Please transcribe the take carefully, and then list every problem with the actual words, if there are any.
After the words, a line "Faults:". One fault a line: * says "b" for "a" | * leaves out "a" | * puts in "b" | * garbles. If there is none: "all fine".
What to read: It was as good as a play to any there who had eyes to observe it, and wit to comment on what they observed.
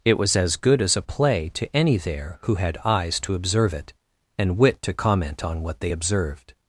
It was as good as a play to any there who had eyes to observe it, and wit to comment on what they observed.
Faults:
all fine